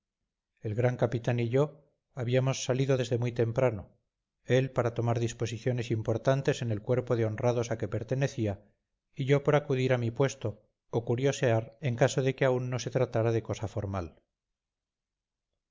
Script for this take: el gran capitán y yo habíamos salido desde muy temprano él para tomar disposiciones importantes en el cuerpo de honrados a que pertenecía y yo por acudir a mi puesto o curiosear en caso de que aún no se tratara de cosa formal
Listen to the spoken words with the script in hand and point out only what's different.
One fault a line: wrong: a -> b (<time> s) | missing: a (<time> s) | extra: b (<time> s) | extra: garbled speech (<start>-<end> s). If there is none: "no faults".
no faults